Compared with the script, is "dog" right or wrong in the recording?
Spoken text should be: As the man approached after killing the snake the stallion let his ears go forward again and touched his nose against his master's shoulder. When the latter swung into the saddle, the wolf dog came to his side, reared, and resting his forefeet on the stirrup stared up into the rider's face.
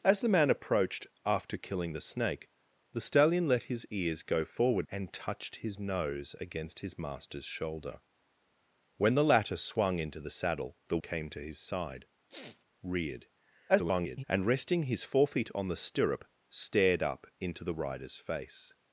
wrong